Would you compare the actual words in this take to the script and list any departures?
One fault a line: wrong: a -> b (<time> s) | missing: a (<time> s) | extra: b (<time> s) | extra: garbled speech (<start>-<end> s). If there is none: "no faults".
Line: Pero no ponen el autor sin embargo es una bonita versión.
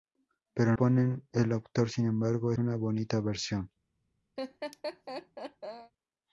missing: no (0.8 s)
missing: es (2.5 s)